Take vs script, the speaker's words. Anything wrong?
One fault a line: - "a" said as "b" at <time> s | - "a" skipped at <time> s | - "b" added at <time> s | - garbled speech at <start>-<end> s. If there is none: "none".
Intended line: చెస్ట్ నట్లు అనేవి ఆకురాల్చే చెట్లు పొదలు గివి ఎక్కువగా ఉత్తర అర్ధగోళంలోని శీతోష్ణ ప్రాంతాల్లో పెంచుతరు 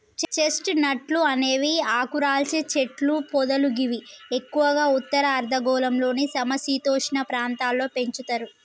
- "సమ" added at 6.3 s